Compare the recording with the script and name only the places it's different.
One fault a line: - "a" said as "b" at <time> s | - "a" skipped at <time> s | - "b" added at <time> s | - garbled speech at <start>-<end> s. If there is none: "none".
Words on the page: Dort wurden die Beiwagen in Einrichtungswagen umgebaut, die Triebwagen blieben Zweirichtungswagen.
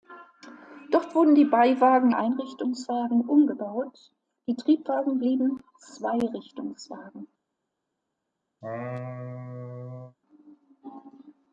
- "in" skipped at 2.1 s